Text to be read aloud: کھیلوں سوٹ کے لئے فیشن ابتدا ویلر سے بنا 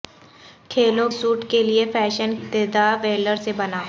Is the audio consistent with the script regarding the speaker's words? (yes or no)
yes